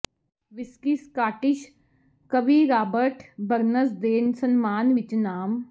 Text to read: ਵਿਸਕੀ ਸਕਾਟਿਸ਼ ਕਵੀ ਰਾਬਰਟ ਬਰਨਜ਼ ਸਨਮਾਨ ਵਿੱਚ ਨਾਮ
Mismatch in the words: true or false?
true